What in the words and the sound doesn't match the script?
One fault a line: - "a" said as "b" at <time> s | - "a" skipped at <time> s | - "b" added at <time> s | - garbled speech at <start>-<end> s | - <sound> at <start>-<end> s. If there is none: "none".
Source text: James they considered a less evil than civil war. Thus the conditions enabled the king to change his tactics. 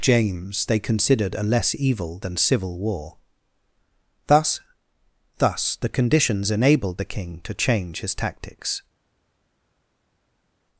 - "Thus" added at 5.4 s